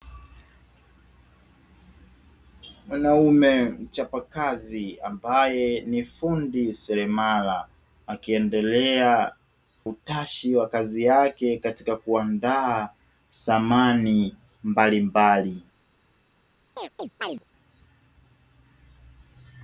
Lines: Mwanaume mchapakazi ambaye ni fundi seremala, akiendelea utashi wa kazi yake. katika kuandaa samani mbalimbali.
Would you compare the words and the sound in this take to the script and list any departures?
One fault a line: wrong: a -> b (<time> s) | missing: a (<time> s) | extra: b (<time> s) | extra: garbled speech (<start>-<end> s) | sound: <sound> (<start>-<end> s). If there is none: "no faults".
sound: chirp (16.8-17.4 s)